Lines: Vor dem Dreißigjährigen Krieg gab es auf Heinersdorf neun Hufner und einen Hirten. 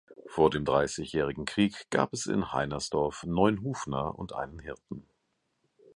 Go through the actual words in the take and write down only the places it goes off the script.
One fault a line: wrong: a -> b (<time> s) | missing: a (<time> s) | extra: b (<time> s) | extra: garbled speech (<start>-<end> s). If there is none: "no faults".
wrong: auf -> in (2.2 s)